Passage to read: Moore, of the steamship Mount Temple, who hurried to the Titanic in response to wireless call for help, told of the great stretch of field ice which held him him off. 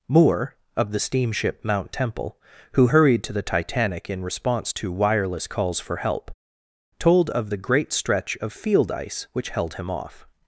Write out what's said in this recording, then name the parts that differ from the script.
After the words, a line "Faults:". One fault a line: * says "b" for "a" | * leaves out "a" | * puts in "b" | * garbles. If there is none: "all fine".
Moore, of the steamship Mount Temple, who hurried to the Titanic in response to wireless calls for help, told of the great stretch of field ice which held him off.
Faults:
* says "calls" for "call"
* leaves out "him"